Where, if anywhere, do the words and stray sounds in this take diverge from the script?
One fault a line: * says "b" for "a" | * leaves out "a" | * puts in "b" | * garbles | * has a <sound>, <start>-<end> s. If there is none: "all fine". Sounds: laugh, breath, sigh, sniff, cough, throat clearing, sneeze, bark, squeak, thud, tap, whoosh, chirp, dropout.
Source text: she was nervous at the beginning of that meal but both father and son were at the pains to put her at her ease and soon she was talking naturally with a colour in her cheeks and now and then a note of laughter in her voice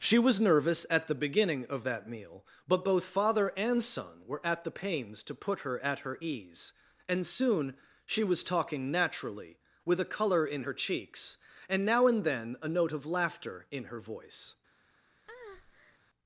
* has a breath, 15.3-16.0 s